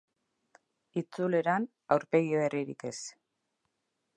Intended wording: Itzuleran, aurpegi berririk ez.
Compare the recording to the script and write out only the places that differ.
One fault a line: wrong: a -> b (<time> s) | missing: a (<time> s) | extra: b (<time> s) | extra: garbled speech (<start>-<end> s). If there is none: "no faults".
no faults